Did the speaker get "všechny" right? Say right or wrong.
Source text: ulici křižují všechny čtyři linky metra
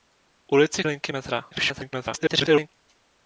wrong